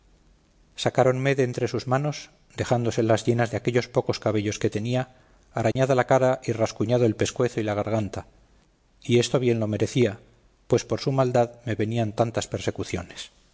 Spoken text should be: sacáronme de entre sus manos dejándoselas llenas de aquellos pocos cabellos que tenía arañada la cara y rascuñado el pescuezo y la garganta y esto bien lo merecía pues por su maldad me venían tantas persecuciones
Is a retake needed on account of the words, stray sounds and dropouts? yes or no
yes